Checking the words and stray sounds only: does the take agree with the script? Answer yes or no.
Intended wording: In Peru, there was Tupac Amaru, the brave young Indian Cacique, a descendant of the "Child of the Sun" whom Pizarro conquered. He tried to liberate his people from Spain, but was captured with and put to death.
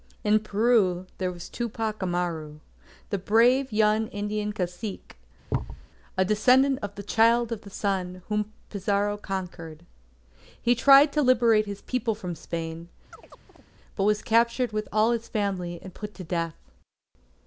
no